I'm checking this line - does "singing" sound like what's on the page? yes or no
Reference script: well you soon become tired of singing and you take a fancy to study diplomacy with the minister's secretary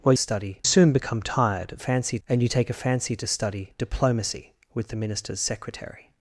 no